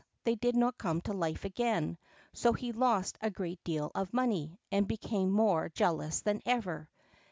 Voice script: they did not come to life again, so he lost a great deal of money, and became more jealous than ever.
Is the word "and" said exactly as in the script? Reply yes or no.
yes